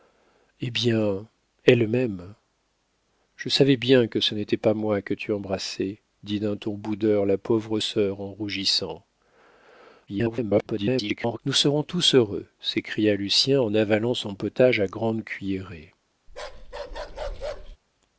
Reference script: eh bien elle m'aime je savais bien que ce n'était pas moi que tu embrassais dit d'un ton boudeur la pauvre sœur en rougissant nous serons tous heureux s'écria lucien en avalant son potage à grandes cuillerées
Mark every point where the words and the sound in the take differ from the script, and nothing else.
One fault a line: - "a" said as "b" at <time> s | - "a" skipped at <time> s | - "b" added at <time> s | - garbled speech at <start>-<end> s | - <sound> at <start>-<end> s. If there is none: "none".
- garbled speech at 10.1-11.4 s
- bark at 16.3-17.8 s